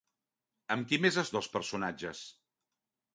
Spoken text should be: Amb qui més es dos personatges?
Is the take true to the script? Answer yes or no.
yes